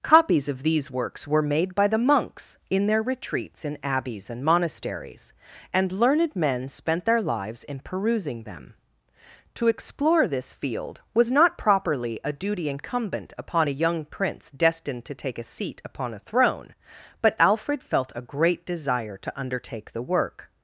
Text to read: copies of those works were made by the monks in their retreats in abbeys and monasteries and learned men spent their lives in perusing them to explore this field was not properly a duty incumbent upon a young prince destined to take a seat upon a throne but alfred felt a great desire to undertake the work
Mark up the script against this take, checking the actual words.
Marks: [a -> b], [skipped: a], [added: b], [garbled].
copies of [those -> these] works were made by the monks in their retreats in abbeys and monasteries and learned men spent their lives in perusing them to explore this field was not properly a duty incumbent upon a young prince destined to take a seat upon a throne but alfred felt a great desire to undertake the work